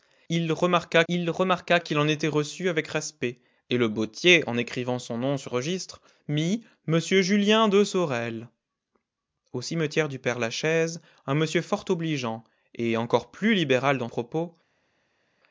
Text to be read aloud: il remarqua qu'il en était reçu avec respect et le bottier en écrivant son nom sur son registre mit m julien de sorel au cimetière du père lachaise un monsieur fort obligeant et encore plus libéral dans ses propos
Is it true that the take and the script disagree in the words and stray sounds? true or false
true